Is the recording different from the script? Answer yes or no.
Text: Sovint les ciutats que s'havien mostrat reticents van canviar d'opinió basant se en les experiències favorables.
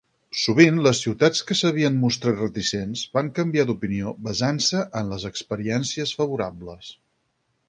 no